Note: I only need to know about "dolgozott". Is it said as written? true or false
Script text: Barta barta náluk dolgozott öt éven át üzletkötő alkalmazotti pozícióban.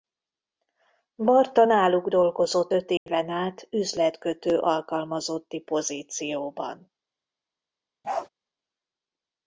true